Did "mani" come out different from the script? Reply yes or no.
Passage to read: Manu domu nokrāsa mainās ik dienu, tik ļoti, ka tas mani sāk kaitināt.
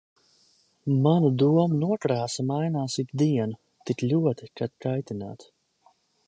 yes